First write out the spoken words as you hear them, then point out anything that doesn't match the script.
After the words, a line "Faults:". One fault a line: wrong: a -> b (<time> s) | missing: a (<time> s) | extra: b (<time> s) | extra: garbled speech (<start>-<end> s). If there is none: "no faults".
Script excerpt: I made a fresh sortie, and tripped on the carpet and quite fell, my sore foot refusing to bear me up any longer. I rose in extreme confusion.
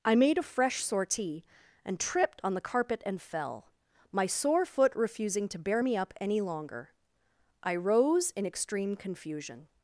I made a fresh sortie, and tripped on the carpet and fell, my sore foot refusing to bear me up any longer. I rose in extreme confusion.
Faults:
missing: quite (3.2 s)